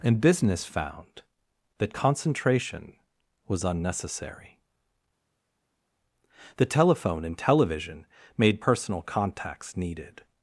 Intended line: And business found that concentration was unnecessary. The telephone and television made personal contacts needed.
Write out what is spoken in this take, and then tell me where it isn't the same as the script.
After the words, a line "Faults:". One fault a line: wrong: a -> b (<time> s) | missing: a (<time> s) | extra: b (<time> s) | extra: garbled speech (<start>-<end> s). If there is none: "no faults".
And business found that concentration was unnecessary. The telephone and television made personal contacts needed.
Faults:
no faults